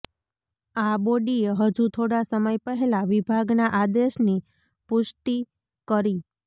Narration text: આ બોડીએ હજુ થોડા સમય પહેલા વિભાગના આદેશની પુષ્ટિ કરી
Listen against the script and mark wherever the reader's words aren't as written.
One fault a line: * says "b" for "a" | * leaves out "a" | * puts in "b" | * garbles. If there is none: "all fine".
all fine